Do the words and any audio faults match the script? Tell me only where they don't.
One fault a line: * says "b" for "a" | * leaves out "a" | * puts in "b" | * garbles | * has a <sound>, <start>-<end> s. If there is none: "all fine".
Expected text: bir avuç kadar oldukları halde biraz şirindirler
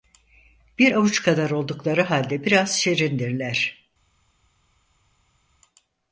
all fine